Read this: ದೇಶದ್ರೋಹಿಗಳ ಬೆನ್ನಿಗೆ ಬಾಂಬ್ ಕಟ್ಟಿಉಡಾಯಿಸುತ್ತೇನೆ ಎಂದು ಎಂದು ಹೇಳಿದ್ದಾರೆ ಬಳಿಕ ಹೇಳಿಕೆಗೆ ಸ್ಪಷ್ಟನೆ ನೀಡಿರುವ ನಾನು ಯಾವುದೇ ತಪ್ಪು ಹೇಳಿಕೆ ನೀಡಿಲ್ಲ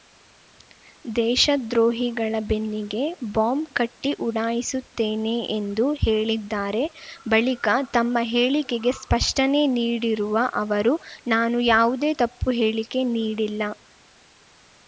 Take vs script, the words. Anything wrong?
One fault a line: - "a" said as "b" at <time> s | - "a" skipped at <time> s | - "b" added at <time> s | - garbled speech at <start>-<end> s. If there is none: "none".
- "ಎಂದು" skipped at 5.8 s
- "ತಮ್ಮ" added at 7.9 s
- "ಅವರು" added at 10.6 s